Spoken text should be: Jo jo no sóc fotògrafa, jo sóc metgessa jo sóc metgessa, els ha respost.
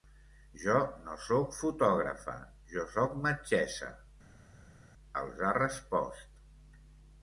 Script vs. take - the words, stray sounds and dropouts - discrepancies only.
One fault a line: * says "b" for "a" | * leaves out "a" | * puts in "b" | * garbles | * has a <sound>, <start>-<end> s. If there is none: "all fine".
* leaves out "jo"
* leaves out "jo sóc metgessa"